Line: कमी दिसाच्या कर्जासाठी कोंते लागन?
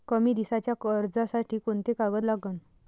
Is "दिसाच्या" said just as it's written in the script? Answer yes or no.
yes